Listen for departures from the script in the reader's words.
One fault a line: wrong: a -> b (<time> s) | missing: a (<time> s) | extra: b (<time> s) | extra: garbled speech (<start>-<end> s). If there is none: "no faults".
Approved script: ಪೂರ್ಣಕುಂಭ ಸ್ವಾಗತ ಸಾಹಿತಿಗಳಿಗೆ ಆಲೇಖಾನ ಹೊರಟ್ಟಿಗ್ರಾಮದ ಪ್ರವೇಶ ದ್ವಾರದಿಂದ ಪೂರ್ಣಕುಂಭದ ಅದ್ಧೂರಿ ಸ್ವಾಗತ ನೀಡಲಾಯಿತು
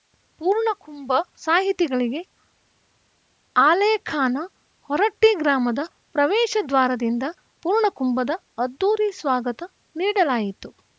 missing: ಸ್ವಾಗತ (1.1 s)